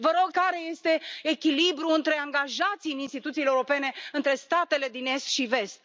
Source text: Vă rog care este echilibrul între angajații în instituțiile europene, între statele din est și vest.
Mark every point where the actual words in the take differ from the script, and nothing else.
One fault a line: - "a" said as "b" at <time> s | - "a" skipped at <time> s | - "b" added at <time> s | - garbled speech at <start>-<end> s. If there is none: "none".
none